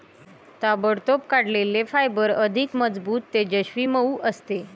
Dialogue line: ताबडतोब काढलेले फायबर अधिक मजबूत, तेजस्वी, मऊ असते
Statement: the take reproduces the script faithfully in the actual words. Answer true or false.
true